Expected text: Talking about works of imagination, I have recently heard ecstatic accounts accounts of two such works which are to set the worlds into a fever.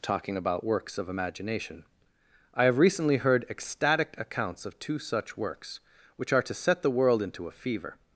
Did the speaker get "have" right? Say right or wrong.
right